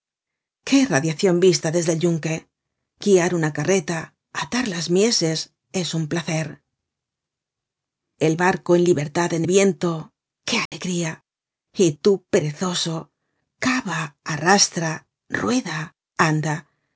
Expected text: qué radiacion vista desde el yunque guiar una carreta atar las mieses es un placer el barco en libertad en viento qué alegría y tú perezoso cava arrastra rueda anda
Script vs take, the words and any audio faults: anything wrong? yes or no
yes